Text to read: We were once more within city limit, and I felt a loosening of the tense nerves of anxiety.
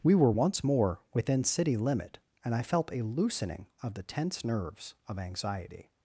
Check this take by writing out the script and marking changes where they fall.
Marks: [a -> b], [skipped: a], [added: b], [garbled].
We were once more within city limit, and I felt a loosening of the tense nerves of anxiety.